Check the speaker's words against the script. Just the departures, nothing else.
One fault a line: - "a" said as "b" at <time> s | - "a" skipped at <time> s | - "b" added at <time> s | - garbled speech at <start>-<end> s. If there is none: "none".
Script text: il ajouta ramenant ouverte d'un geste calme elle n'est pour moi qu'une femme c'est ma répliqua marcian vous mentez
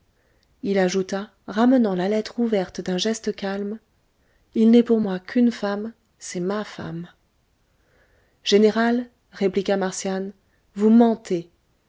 - "la lettre" added at 1.9 s
- "elle" said as "il" at 4.5 s
- "femme général" added at 6.6 s